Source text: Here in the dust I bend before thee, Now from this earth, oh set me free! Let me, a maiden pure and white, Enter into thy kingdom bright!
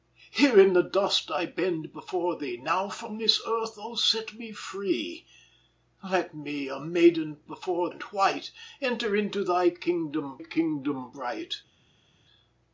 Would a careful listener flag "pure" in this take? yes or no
yes